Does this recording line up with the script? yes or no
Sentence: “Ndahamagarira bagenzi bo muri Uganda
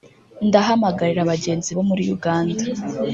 yes